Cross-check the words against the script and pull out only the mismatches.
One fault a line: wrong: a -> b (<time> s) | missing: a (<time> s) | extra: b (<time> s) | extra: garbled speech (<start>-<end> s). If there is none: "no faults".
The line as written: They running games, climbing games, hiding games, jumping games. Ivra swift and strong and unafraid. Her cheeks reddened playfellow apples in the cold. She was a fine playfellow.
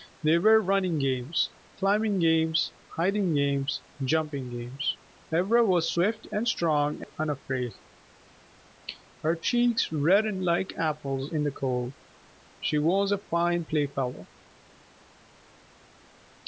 extra: were (0.4 s)
extra: was (5.6 s)
wrong: playfellow -> like (10.4 s)